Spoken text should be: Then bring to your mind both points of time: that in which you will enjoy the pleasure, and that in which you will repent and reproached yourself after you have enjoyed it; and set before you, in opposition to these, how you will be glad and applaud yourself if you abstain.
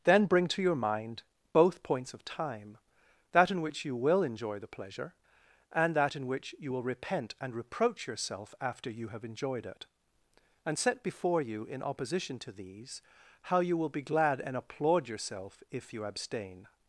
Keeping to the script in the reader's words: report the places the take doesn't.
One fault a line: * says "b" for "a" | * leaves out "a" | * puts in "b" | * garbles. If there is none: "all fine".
* says "reproach" for "reproached"